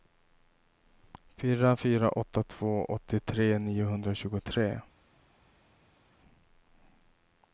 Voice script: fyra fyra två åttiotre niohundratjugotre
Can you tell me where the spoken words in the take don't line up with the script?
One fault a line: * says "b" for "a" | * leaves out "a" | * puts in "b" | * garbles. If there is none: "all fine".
* puts in "åtta"